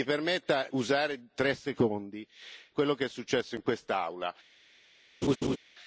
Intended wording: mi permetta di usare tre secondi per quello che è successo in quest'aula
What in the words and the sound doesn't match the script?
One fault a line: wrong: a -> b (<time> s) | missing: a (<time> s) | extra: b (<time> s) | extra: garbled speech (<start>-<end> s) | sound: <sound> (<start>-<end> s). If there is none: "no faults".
missing: di (0.7 s)
missing: per (2.3 s)
sound: laugh (5.2-5.6 s)